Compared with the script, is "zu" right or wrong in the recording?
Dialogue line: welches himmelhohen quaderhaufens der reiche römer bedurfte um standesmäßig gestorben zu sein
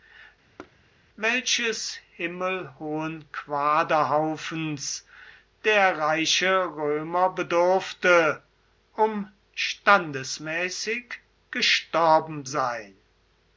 wrong